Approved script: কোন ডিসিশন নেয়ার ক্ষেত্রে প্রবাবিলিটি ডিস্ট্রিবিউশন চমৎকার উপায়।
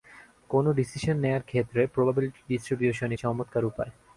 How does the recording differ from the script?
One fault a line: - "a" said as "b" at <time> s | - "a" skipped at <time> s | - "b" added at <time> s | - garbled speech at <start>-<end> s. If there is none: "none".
none